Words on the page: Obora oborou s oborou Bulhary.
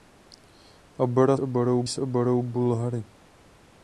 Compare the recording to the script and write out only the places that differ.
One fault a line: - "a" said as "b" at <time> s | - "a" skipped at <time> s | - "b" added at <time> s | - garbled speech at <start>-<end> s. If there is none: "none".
none